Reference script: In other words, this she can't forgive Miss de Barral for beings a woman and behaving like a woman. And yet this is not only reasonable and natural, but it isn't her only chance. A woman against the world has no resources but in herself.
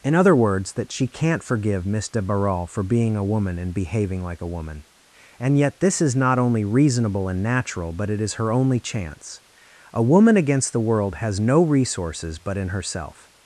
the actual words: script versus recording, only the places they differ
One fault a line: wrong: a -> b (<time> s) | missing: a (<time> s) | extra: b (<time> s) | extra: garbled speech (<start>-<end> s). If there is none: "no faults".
wrong: this -> that (0.7 s)
wrong: beings -> being (2.8 s)
wrong: isn't -> is (8.2 s)